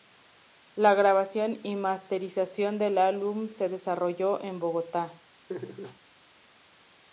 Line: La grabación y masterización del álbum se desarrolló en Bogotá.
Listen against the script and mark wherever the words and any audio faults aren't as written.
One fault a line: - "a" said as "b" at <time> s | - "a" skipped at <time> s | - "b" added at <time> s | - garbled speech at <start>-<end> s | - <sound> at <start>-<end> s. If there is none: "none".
- laugh at 5.5-6.0 s